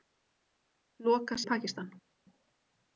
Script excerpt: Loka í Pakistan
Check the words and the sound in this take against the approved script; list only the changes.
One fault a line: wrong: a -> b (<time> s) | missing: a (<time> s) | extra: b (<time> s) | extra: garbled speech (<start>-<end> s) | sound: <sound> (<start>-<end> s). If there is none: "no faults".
no faults